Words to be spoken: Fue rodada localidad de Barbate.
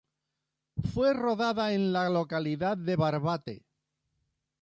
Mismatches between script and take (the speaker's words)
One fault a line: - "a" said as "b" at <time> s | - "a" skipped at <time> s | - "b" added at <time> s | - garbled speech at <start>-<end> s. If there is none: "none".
- "en la" added at 1.7 s